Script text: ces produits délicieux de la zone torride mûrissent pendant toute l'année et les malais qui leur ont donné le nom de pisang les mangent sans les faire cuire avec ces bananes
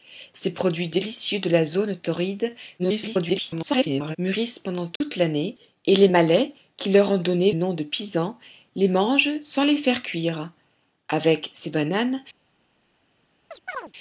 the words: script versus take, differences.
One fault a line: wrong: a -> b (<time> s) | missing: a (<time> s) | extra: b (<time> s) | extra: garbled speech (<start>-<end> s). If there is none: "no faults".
extra: garbled speech (2.8-4.2 s)
missing: le (7.5 s)